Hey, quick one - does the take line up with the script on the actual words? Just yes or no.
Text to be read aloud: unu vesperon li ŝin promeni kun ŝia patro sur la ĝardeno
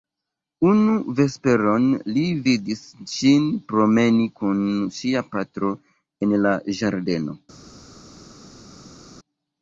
no